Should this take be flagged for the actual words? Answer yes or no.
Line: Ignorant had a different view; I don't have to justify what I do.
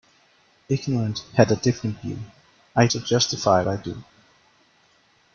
yes